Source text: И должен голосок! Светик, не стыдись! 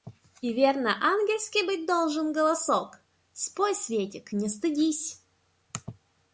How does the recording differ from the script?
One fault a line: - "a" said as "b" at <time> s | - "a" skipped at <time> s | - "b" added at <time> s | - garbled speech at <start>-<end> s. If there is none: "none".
- "верно ангельский быть" added at 0.5 s
- "Спой" added at 3.3 s